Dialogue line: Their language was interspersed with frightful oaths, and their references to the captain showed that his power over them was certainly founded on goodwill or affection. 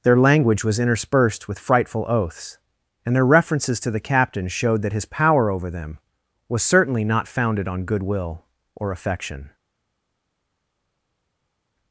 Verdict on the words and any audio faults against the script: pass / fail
fail